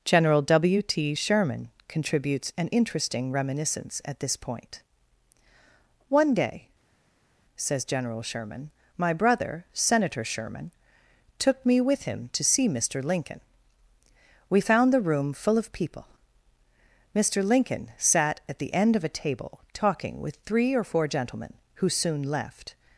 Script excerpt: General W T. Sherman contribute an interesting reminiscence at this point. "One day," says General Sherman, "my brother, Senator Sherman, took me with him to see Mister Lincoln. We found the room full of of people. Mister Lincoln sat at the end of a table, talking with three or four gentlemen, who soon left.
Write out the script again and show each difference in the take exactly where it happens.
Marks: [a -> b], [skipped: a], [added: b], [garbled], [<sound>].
General W T. Sherman [contribute -> contributes] an interesting reminiscence at this point. "One day," says General Sherman, "my brother, Senator Sherman, took me with him to see Mister Lincoln. We found the room full of [skipped: of] people. Mister Lincoln sat at the end of a table, talking with three or four gentlemen, who soon left.